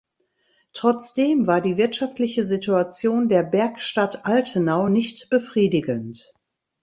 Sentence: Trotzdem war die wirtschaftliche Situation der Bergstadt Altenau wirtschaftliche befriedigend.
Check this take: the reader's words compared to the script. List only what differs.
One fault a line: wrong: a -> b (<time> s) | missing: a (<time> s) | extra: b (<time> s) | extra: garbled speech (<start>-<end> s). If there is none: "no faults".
wrong: wirtschaftliche -> nicht (4.9 s)